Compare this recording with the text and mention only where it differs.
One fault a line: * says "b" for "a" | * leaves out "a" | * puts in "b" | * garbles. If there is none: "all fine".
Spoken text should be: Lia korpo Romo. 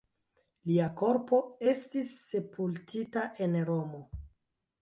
* puts in "estis sepultita en"